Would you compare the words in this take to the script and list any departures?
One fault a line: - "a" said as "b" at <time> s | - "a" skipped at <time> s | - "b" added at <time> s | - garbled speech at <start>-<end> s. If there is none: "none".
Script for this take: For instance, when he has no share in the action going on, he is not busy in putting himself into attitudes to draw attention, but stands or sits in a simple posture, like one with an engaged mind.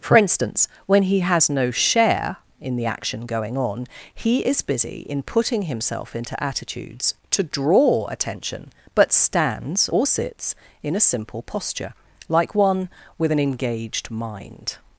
- "not" skipped at 4.6 s